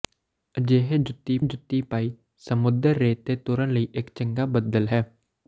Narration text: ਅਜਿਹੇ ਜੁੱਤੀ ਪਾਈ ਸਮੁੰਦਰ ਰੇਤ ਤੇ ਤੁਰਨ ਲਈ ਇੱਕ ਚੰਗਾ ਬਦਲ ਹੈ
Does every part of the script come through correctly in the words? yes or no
no